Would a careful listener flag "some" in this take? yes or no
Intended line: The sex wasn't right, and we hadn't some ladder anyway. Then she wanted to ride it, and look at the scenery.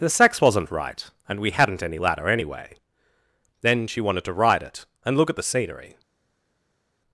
yes